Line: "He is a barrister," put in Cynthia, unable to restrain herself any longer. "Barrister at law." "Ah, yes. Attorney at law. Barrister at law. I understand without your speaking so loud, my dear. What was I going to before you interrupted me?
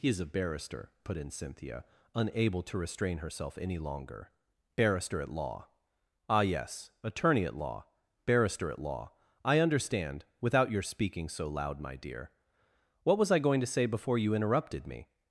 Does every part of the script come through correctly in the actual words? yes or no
no